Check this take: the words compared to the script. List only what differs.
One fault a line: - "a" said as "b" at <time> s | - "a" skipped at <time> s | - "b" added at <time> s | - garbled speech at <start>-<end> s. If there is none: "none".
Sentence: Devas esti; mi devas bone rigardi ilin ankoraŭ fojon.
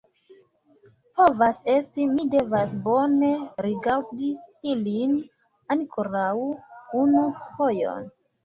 - "Devas" said as "Povas" at 1.2 s
- "unu" added at 7.0 s